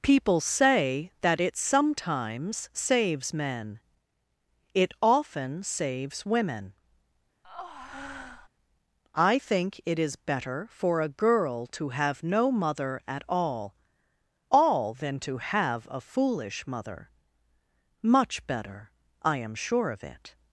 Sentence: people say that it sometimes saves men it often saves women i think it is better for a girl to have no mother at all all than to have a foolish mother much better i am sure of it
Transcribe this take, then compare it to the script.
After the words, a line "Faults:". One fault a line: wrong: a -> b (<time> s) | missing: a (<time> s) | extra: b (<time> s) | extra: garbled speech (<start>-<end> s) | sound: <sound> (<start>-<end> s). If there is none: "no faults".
people say that it sometimes saves men it often saves women i think it is better for a girl to have no mother at all all than to have a foolish mother much better i am sure of it
Faults:
sound: breath (7.4-8.5 s)